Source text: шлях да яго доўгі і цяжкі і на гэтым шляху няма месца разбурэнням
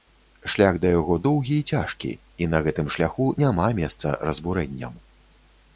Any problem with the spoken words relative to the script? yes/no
no